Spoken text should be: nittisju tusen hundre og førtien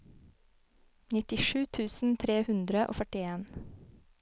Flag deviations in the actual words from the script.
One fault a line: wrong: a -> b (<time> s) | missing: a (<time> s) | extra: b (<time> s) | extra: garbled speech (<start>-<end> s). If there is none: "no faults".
extra: tre (2.2 s)